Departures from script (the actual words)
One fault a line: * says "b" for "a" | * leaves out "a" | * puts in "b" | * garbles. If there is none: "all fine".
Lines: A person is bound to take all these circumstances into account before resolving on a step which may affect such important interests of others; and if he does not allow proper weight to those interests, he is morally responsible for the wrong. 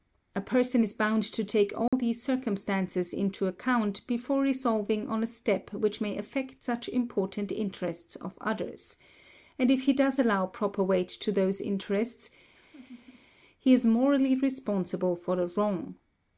* leaves out "not"